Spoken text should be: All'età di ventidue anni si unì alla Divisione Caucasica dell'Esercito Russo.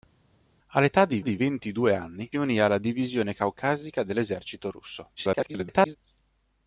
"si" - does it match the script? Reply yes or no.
no